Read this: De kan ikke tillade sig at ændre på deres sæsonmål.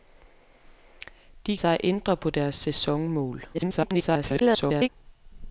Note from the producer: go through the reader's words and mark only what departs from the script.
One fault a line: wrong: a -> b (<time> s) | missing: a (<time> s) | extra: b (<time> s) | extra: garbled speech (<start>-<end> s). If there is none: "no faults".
missing: kan ikke tillade (1.6 s)
extra: garbled speech (3.5-4.9 s)